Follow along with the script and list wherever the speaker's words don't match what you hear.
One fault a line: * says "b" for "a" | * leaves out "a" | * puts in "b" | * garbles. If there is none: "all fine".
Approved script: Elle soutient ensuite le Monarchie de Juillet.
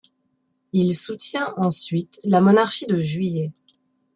* says "Il" for "Elle"
* says "la" for "le"